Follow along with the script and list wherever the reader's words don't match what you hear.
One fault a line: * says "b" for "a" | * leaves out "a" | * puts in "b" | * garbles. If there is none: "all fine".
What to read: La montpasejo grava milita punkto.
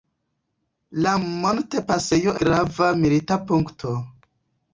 all fine